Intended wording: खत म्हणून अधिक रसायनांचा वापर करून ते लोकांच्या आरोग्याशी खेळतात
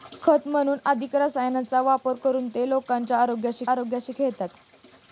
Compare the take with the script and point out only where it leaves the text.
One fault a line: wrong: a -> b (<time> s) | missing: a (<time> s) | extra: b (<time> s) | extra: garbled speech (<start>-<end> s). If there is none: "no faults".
extra: आरोग्याशी (3.7 s)